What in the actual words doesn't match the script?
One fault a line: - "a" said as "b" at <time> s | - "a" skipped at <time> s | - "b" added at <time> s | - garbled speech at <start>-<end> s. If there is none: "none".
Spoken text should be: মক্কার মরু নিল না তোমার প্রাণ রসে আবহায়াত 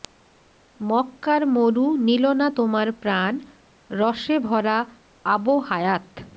- "ভরা" added at 4.5 s